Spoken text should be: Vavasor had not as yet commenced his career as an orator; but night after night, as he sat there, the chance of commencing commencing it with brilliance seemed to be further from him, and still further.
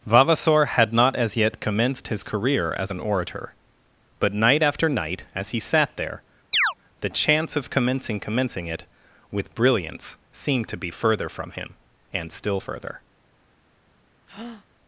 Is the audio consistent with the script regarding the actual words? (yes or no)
yes